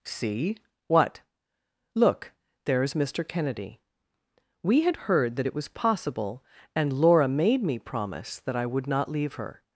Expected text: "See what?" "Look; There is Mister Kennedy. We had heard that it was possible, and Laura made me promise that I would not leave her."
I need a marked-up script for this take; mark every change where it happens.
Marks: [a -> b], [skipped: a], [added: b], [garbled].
"See what?" "Look; There is Mister Kennedy. We had heard that it was possible, and Laura made me promise that I would not leave her."